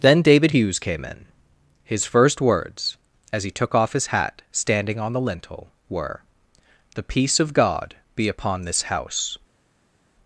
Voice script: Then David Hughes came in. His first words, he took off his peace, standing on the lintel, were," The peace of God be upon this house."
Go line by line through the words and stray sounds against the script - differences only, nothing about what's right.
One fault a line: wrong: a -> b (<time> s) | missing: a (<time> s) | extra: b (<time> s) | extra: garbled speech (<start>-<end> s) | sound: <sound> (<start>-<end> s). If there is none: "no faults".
extra: as (3.3 s)
wrong: peace -> hat (4.1 s)